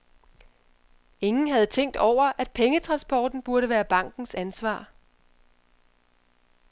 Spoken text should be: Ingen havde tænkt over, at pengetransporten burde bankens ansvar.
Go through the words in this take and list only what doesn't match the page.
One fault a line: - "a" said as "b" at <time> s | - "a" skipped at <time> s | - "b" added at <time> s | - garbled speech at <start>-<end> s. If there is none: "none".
- "være" added at 3.7 s